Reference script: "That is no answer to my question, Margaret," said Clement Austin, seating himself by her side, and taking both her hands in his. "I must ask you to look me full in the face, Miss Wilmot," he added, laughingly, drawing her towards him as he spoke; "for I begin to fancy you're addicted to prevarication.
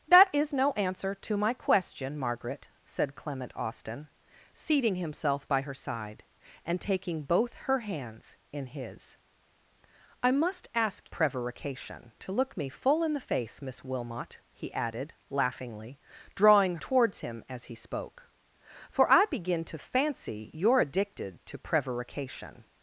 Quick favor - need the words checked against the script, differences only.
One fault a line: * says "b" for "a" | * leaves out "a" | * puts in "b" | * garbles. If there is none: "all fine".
* says "prevarication" for "you"
* leaves out "her"